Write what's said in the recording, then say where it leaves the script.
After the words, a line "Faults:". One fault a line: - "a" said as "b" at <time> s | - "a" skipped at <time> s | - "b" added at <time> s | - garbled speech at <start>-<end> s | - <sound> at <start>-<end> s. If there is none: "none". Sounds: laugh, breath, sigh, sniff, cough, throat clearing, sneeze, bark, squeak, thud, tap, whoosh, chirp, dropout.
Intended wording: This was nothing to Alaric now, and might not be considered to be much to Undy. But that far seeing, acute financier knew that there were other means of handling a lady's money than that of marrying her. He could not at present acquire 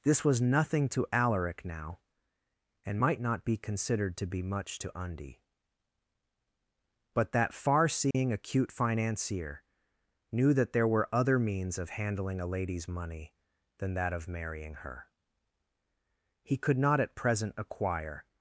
This was nothing to Alaric now, and might not be considered to be much to Undy. But that far seeing, acute financier knew that there were other means of handling a lady's money than that of marrying her. He could not at present acquire
Faults:
- dropout at 8.1-8.1 s